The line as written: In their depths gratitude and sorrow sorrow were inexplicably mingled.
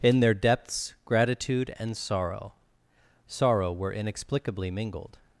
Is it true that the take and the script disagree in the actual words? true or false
false